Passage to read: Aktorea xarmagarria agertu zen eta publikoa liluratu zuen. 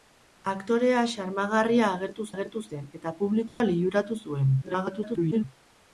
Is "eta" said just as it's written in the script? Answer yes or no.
yes